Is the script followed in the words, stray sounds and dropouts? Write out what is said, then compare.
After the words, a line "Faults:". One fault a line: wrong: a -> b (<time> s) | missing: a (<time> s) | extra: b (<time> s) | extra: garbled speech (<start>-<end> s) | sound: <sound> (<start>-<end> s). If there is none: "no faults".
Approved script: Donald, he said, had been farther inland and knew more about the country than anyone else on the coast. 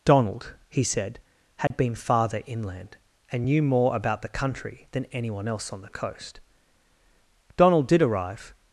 Donald, he said, had been farther inland and knew more about the country than anyone else on the coast. Donald did arrive
Faults:
sound: dropout (1.7-1.7 s)
extra: Donald did arrive (7.6 s)